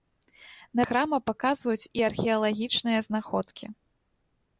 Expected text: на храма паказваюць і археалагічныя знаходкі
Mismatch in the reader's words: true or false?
false